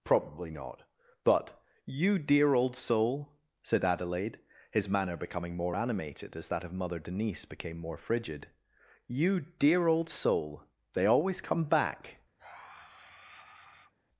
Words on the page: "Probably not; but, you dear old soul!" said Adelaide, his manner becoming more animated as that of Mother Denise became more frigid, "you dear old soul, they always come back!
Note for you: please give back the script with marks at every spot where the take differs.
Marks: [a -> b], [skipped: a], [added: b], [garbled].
"Probably not; but, you dear old soul!" said Adelaide, his manner becoming more animated as that of Mother Denise became more frigid, "you dear old soul, they always come back!